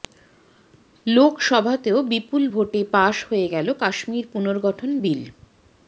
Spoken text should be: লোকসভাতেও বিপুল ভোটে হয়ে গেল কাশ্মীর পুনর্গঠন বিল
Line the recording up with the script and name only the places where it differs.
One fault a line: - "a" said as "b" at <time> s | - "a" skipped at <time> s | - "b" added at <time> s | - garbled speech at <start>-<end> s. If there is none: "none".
- "পাশ" added at 2.9 s